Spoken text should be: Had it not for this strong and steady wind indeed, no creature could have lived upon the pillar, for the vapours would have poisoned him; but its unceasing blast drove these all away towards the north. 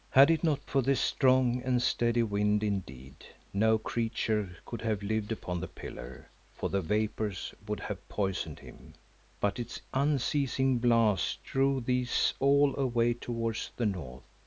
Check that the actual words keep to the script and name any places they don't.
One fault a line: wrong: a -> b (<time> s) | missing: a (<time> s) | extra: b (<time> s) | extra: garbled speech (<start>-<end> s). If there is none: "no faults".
no faults